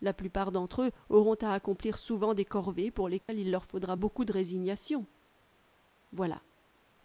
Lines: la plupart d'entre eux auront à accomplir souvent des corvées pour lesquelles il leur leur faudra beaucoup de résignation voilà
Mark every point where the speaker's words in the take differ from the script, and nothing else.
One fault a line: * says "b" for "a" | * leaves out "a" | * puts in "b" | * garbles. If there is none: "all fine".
* leaves out "leur"